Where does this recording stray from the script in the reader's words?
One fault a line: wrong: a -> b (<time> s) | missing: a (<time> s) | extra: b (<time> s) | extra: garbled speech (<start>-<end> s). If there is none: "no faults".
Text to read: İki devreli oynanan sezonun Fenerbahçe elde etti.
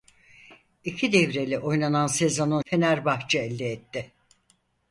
no faults